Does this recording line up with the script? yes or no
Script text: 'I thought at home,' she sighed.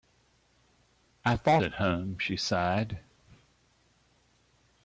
yes